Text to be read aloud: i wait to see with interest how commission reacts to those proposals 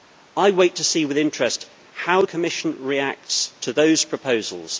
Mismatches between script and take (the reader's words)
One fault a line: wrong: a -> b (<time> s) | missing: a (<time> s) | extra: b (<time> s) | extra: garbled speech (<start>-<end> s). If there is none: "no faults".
no faults